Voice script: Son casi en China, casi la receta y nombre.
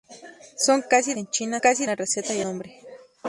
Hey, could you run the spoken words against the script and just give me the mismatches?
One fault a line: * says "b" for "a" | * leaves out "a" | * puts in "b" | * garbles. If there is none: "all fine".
all fine